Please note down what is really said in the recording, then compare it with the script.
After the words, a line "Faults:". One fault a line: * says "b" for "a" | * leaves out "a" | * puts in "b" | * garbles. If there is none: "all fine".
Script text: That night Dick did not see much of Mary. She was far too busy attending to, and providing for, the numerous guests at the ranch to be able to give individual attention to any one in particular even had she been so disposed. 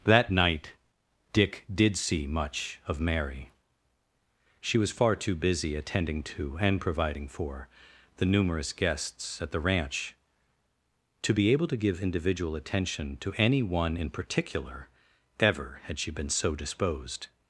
That night Dick did see much of Mary. She was far too busy attending to, and providing for, the numerous guests at the ranch to be able to give individual attention to any one in particular ever had she been so disposed.
Faults:
* leaves out "not"
* says "ever" for "even"